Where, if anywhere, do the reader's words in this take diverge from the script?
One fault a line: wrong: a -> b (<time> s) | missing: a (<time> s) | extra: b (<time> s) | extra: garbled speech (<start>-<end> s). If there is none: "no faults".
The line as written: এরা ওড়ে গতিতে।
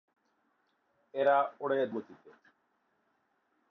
no faults